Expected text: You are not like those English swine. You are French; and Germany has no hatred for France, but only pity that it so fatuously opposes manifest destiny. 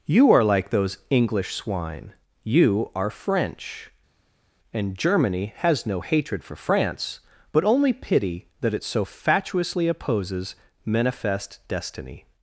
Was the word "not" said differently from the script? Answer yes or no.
yes